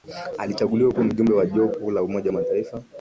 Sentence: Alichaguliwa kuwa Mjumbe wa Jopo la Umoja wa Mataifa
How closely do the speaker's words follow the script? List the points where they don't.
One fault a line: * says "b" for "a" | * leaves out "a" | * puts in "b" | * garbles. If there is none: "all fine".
all fine